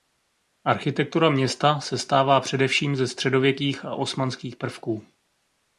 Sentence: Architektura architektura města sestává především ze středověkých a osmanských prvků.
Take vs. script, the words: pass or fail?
fail